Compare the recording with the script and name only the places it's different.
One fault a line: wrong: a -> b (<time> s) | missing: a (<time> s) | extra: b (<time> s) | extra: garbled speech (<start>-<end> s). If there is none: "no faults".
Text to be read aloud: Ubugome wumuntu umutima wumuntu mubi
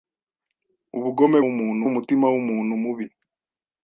no faults